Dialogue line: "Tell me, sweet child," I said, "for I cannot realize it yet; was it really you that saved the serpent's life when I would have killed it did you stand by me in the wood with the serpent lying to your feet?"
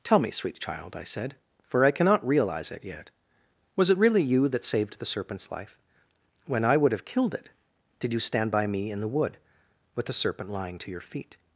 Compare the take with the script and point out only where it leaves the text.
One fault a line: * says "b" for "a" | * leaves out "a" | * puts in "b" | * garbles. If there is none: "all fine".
all fine